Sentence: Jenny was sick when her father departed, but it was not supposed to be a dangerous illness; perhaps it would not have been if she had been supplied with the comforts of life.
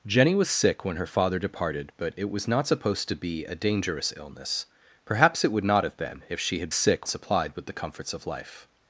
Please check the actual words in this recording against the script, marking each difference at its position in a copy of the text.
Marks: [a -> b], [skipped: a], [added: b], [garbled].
Jenny was sick when her father departed, but it was not supposed to be a dangerous illness; perhaps it would not have been if she had [been -> sick] supplied with the comforts of life.